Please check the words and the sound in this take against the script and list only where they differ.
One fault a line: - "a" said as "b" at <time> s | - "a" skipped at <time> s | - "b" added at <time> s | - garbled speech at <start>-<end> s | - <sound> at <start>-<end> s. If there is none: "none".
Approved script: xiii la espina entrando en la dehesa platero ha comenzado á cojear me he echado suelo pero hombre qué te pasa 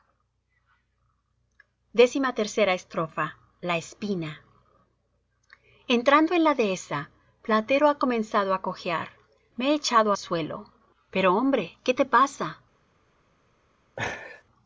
- laugh at 14.0-14.4 s